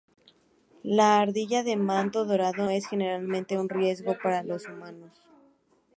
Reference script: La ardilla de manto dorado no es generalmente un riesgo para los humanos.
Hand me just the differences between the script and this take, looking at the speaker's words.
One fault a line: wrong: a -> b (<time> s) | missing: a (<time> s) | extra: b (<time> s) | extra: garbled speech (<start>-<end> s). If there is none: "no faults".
missing: no (2.7 s)